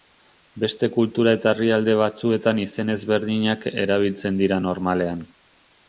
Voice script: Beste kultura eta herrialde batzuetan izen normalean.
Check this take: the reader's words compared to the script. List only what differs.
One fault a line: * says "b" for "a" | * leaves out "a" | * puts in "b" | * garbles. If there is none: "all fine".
* puts in "ezberdinak erabiltzen dira"